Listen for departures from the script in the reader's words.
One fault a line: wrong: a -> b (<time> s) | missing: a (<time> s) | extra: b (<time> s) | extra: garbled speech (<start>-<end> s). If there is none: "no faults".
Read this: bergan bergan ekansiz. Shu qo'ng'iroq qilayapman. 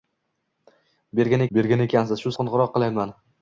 no faults